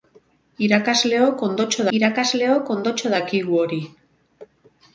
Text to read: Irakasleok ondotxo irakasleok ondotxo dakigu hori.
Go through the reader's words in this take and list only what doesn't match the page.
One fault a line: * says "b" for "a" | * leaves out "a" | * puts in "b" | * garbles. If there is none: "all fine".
all fine